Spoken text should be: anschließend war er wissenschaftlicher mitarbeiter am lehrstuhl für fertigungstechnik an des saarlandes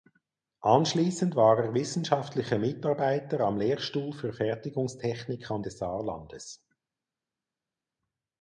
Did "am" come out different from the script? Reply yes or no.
no